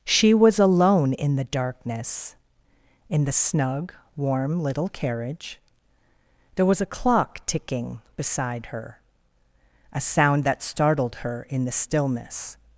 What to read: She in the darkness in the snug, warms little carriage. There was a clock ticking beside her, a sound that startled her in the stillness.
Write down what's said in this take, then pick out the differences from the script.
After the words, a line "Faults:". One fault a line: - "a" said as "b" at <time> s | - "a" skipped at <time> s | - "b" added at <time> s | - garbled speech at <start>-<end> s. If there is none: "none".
She was alone in the darkness in the snug, warm little carriage. There was a clock ticking beside her, a sound that startled her in the stillness.
Faults:
- "was alone" added at 0.3 s
- "warms" said as "warm" at 4.1 s